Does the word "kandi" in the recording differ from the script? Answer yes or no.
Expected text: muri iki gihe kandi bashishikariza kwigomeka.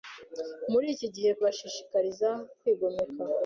yes